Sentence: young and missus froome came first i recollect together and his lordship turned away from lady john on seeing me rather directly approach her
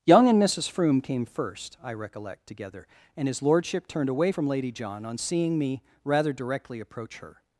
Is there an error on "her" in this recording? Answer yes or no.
no